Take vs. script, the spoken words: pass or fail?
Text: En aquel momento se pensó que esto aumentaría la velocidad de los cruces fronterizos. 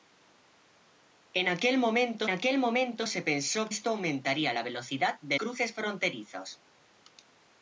fail